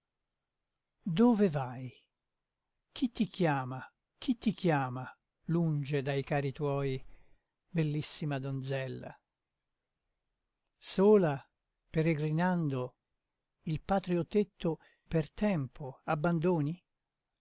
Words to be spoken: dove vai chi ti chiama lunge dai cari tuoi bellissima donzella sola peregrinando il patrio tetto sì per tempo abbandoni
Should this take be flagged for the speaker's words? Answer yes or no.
yes